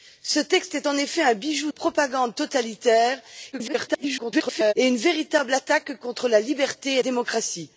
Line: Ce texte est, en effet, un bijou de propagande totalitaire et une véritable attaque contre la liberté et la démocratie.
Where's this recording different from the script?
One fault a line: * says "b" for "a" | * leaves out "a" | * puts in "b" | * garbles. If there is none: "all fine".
* leaves out "de"
* garbles
* leaves out "la"